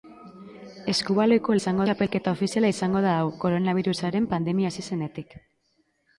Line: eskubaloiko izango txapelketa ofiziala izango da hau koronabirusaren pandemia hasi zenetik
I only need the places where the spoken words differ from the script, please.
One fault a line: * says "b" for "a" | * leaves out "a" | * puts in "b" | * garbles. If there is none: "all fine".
all fine